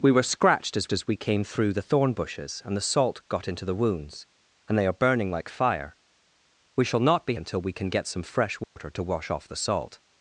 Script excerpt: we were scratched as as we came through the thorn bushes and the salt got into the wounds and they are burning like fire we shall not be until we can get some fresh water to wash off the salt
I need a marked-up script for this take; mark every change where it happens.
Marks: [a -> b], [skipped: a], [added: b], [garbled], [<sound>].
we were scratched as as we came through the thorn bushes and the salt got into the wounds and they are burning like fire we shall not be until we can get some fresh water [dropout] to wash off the salt